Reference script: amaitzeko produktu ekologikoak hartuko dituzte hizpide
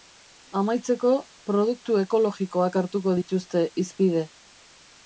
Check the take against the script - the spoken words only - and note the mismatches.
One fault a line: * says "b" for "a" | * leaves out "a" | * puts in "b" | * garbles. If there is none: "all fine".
all fine